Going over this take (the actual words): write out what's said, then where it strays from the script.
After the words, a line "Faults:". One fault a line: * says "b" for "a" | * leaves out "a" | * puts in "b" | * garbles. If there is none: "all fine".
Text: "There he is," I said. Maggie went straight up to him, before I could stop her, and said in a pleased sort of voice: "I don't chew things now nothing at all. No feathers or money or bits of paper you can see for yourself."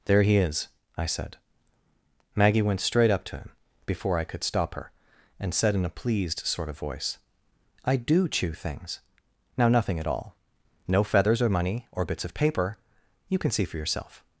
"There he is," I said. Maggie went straight up to him, before I could stop her, and said in a pleased sort of voice: "I do chew things now nothing at all. No feathers or money or bits of paper you can see for yourself."
Faults:
* says "do" for "don't"